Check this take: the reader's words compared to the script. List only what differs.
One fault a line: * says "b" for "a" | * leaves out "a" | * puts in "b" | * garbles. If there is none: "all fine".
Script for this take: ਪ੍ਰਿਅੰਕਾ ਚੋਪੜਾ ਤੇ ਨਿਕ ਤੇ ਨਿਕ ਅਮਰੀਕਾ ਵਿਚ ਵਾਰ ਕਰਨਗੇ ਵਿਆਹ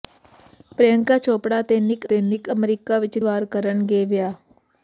all fine